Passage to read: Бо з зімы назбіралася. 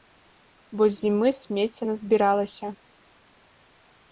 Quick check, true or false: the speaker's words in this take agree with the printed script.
false